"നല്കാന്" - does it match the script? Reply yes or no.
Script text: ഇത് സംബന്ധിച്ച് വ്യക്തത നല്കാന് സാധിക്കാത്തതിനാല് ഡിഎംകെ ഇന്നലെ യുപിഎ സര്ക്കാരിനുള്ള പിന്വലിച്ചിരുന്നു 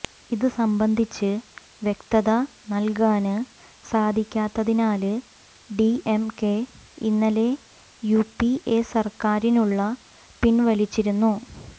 yes